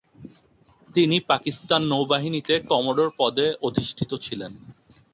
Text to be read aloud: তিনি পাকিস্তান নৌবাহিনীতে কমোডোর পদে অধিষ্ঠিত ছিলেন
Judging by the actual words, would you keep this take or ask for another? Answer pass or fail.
pass